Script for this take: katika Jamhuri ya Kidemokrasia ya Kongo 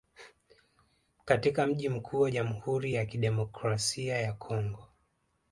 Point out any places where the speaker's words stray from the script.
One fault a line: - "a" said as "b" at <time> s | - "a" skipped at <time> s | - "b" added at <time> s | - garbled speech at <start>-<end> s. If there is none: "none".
- "mji mkuu wa" added at 1.7 s